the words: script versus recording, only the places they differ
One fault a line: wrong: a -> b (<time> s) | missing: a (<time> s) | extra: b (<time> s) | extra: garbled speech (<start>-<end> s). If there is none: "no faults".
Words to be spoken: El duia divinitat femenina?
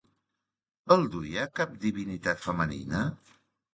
extra: cap (1.6 s)